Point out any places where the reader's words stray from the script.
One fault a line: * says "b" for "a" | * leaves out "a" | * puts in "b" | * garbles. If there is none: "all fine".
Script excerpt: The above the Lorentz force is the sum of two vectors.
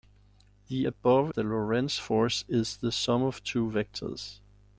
all fine